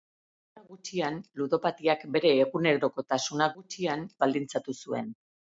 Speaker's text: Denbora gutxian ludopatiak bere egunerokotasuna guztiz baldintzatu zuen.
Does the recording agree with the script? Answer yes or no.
no